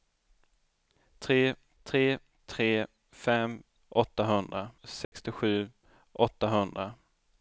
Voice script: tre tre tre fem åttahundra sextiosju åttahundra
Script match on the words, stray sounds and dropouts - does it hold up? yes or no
no